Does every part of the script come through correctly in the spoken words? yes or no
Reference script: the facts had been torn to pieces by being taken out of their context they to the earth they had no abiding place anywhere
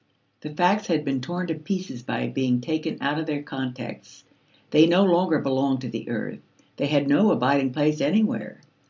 no